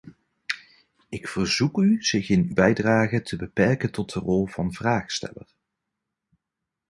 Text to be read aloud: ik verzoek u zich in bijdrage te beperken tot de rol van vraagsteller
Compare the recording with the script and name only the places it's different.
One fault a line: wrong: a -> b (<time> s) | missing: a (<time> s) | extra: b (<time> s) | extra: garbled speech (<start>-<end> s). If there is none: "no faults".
no faults